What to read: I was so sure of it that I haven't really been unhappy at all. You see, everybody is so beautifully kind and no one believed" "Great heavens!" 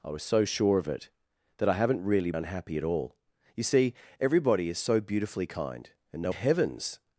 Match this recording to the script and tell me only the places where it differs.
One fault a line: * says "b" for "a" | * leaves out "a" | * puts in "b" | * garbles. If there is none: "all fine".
* leaves out "been"
* leaves out "one believed Great"